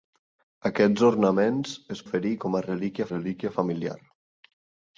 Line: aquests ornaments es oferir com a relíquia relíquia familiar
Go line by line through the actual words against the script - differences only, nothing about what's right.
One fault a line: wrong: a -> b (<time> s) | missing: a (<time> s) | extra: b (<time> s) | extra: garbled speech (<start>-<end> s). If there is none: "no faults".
no faults